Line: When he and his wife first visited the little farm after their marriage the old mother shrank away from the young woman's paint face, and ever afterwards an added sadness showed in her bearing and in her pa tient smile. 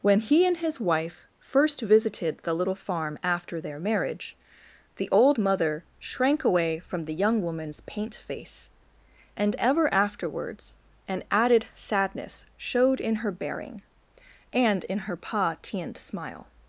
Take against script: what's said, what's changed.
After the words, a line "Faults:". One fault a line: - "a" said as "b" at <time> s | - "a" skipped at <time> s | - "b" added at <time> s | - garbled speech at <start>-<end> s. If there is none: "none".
When he and his wife first visited the little farm after their marriage the old mother shrank away from the young woman's paint face, and ever afterwards an added sadness showed in her bearing and in her pa tient smile.
Faults:
none